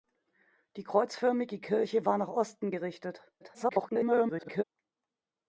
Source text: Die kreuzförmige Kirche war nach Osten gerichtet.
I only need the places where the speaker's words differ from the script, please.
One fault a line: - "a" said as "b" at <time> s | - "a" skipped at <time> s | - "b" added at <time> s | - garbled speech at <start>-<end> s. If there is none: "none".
- garbled speech at 3.4-4.6 s